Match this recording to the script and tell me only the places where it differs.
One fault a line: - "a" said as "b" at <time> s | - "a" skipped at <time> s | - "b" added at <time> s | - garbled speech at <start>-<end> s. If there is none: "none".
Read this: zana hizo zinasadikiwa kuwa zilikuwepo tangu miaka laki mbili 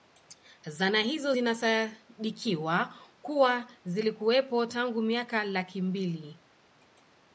none